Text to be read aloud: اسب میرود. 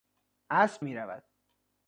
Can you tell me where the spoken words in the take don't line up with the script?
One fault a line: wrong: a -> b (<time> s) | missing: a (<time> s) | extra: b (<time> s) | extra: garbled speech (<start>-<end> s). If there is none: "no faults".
no faults